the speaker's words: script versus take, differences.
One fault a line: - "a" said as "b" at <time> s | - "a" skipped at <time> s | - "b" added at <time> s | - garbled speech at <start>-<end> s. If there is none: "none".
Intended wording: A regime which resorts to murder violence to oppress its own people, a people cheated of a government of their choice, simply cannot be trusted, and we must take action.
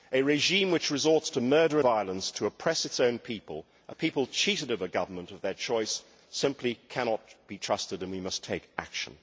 none